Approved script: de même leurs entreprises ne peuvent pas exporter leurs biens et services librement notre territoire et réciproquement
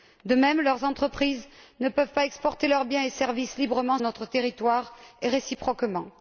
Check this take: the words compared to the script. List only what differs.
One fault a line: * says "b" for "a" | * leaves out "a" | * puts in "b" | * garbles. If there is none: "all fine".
all fine